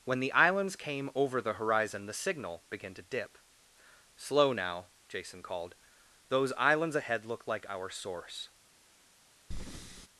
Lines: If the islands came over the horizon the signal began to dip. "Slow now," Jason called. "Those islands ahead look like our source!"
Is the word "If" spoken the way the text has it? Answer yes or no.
no